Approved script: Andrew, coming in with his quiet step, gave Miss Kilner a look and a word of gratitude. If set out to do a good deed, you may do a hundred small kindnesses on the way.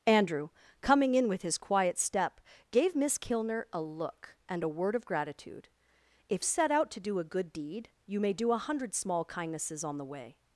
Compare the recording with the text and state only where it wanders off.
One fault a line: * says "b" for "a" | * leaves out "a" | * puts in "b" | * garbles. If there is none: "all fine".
all fine